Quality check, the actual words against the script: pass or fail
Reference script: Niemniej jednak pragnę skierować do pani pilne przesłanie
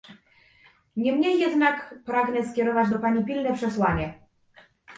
pass